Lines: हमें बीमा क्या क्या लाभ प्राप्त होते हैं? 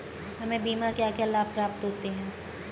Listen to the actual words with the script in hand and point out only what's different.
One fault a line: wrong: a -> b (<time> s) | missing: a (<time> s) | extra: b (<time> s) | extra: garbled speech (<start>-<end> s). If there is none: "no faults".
no faults